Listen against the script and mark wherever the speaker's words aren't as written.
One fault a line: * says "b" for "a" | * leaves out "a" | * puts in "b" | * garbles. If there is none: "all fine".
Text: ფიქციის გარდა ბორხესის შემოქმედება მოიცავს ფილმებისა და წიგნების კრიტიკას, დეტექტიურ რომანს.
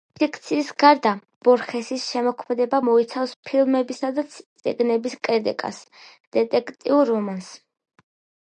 all fine